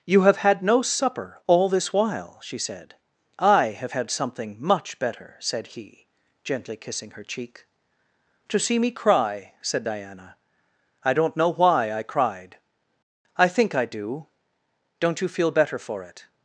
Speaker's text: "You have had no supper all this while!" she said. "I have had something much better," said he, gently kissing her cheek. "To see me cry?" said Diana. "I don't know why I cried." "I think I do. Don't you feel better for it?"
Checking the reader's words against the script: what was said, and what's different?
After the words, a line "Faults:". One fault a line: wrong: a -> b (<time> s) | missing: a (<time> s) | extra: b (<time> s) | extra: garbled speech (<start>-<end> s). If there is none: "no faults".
"You have had no supper all this while!" she said. "I have had something much better," said he, gently kissing her cheek. "To see me cry?" said Diana. "I don't know why I cried." "I think I do. Don't you feel better for it?"
Faults:
no faults